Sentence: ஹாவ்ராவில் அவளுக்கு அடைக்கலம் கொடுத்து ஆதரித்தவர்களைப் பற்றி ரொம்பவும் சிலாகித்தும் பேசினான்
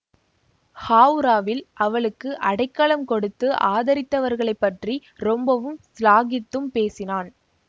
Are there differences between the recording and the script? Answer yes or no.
no